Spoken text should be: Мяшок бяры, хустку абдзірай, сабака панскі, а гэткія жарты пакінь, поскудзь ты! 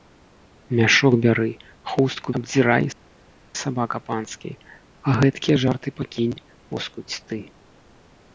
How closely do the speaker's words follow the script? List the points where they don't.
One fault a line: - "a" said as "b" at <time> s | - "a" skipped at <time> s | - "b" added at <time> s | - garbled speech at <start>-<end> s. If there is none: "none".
none